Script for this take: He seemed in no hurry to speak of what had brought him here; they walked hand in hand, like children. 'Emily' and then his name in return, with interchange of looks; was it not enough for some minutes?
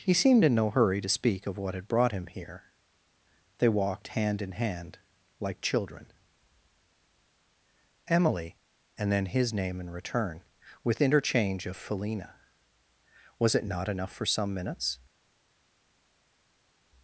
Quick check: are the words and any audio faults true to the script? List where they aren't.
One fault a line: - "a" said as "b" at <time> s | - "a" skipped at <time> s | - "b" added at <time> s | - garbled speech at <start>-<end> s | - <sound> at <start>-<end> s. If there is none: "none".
- "looks" said as "felina" at 11.8 s